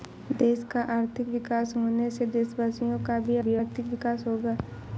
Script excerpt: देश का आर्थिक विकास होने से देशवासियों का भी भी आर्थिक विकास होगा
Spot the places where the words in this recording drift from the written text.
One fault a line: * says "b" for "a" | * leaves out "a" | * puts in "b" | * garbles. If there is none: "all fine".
all fine